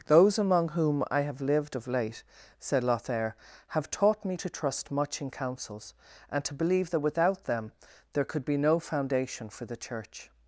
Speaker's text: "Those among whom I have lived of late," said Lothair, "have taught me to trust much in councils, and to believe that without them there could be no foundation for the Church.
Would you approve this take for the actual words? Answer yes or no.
yes